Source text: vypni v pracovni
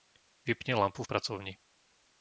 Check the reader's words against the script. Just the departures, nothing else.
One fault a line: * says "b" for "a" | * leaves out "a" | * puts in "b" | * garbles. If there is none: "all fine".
* puts in "lampu"